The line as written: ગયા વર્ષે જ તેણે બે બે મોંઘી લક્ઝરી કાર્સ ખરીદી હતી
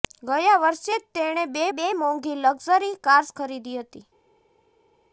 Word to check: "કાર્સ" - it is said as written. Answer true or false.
true